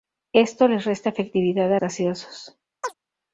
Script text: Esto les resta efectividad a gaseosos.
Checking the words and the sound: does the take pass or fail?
fail